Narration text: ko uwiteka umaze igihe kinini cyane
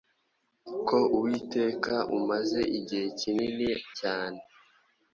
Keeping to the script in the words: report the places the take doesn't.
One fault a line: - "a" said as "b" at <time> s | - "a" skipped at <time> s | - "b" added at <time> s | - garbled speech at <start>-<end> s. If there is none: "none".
none